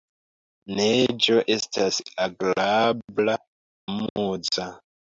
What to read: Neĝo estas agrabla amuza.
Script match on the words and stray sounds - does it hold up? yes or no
no